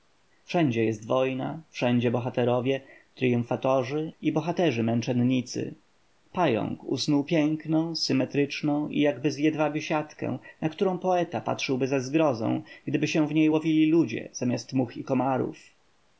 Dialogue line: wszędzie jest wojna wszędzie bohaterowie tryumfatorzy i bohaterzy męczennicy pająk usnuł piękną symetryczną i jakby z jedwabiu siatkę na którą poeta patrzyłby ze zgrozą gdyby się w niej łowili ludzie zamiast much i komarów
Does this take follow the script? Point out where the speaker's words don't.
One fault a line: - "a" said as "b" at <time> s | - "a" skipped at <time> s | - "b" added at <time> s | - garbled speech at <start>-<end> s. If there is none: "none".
none